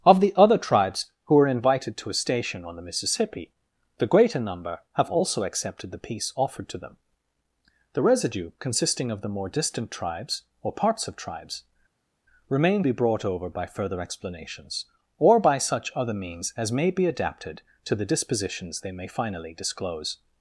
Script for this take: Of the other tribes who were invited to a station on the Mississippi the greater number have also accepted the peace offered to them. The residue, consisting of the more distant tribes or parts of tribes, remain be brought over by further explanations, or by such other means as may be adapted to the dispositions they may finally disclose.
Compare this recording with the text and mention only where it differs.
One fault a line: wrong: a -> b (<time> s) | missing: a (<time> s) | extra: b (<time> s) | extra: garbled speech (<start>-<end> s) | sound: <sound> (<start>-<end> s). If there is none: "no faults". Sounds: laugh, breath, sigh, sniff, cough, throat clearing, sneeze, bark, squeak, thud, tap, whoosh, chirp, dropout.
no faults